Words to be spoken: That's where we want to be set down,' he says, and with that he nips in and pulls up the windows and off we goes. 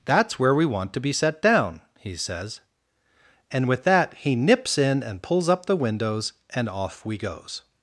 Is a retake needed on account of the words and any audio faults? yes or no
no